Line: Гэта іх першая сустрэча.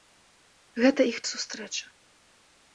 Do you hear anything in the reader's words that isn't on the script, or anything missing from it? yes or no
yes